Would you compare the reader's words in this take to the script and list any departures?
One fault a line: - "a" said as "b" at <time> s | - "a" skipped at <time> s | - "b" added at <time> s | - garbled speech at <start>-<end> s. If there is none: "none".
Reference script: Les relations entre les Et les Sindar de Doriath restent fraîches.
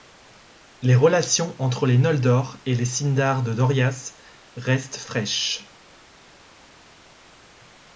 - "Noldor" added at 2.0 s